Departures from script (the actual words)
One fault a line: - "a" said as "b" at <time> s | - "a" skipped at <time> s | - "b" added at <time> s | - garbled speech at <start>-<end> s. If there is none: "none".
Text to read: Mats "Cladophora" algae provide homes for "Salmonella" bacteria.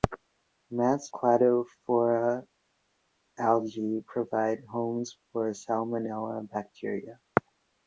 none